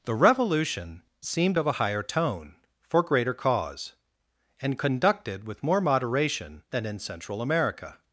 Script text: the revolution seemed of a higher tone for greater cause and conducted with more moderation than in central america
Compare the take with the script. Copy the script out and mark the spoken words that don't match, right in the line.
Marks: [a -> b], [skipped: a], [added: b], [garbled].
the revolution seemed of a higher tone for greater cause and conducted with more moderation than in central america